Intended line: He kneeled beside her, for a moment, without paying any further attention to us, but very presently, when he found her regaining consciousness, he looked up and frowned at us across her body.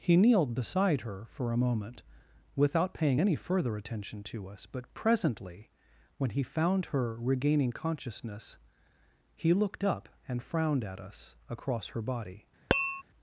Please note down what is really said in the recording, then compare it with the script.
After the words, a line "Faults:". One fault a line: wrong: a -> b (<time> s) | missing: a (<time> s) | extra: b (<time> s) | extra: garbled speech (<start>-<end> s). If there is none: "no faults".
He kneeled beside her, for a moment, without paying any further attention to us, but presently, when he found her regaining consciousness, he looked up and frowned at us across her body.
Faults:
missing: very (4.9 s)